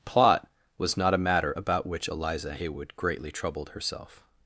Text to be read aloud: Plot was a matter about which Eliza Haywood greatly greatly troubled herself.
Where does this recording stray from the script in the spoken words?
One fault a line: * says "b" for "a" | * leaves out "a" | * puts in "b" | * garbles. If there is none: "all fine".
* puts in "not"
* leaves out "greatly"